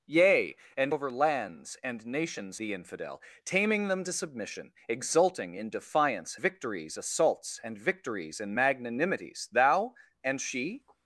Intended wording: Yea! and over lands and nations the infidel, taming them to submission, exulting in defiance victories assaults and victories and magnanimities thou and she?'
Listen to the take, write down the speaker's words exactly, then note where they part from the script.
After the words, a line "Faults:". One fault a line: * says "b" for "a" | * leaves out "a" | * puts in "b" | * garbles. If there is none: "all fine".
Yea! and over lands and nations the infidel, taming them to submission, exulting in defiance victories assaults and victories and magnanimities thou and she?'
Faults:
all fine